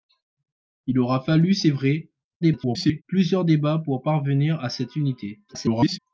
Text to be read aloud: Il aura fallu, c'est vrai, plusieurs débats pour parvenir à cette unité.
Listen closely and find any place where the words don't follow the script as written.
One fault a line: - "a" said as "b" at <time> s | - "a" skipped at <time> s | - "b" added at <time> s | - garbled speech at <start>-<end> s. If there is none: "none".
- garbled speech at 2.4-3.0 s
- garbled speech at 5.5-6.0 s